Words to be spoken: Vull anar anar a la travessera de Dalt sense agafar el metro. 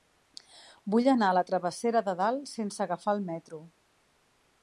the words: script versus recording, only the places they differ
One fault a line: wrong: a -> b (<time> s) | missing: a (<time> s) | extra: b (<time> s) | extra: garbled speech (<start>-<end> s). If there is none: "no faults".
missing: anar (1.3 s)